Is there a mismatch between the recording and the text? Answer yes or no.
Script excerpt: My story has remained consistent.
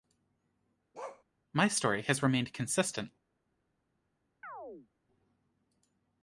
no